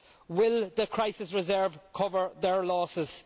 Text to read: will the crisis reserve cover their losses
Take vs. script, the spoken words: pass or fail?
pass